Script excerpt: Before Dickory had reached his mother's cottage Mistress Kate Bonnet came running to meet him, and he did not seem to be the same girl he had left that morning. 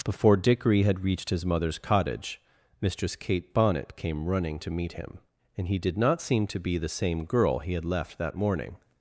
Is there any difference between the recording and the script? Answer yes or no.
no